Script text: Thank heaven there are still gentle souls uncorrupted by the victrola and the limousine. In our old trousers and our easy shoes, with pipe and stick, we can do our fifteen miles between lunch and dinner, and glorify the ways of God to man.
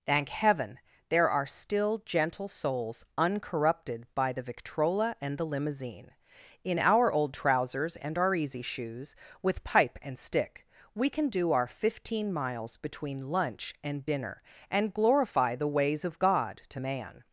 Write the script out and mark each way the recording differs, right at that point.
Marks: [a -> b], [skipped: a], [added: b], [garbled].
Thank heaven there are still gentle souls uncorrupted by the victrola and the limousine. In our old trousers and our easy shoes, with pipe and stick, we can do our fifteen miles between lunch and dinner, and glorify the ways of God to man.